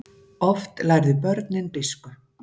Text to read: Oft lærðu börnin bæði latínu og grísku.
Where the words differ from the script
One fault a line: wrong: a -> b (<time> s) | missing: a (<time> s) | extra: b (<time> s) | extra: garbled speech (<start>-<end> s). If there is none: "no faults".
missing: bæði latínu og (1.7 s)